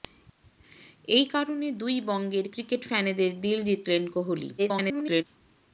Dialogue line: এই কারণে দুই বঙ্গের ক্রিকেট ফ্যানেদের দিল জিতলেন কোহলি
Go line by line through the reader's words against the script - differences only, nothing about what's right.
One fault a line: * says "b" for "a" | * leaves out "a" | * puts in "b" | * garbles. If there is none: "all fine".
* garbles